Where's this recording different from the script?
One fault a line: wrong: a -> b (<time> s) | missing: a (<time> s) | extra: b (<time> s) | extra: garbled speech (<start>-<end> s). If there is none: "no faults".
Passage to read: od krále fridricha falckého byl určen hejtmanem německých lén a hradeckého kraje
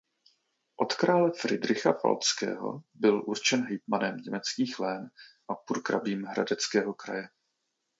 extra: purkrabím (5.5 s)